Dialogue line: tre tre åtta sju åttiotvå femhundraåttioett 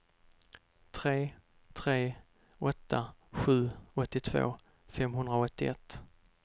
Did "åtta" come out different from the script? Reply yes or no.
no